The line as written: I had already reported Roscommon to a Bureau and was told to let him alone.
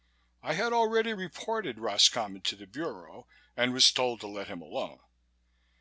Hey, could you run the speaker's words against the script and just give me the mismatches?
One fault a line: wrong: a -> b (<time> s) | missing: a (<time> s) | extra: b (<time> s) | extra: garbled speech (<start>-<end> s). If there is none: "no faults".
wrong: a -> the (2.5 s)